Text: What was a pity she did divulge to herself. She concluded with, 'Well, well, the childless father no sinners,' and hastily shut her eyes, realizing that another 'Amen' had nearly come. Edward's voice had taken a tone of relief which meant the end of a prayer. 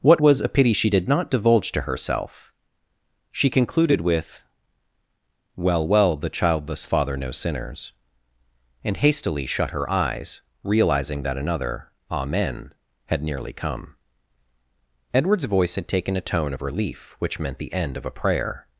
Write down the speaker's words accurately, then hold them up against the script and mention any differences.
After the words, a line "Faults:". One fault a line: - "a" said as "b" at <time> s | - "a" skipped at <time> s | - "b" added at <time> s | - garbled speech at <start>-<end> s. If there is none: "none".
What was a pity she did not divulge to herself. She concluded with, 'Well, well, the childless father no sinners,' and hastily shut her eyes, realizing that another 'Amen' had nearly come. Edward's voice had taken a tone of relief which meant the end of a prayer.
Faults:
- "not" added at 1.1 s